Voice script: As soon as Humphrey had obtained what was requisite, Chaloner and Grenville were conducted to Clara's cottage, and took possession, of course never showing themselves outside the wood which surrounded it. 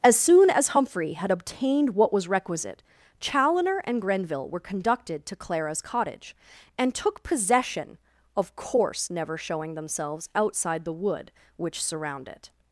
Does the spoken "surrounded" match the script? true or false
false